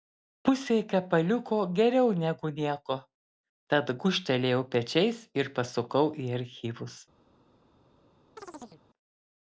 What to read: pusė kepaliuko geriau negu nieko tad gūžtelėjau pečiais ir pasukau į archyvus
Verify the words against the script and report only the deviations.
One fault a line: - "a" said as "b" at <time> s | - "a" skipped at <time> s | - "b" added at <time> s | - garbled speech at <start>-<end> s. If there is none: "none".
none